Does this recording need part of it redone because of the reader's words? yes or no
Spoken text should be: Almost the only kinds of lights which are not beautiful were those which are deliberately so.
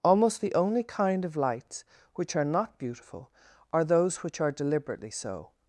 yes